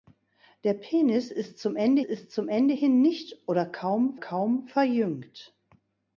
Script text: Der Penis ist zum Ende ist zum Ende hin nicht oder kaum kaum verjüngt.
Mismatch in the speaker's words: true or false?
false